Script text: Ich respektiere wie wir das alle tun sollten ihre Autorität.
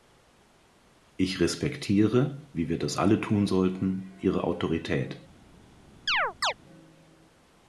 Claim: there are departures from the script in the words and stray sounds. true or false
true